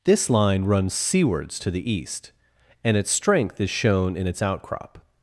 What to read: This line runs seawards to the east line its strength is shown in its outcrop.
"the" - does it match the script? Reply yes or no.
yes